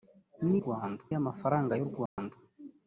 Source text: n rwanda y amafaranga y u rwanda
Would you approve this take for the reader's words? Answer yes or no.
yes